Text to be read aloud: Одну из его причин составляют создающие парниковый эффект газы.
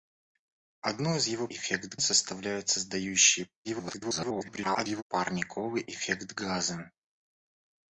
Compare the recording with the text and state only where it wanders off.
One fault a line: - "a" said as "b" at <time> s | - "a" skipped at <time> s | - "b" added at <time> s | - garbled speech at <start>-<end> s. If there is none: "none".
- "причин" said as "эффект" at 1.5 s
- garbled speech at 3.6-5.0 s